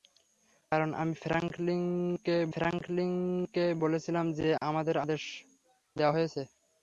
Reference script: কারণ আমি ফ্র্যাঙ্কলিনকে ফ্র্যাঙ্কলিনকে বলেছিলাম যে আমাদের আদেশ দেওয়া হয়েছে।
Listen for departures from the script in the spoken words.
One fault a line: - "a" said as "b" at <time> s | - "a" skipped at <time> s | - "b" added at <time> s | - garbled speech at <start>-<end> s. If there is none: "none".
none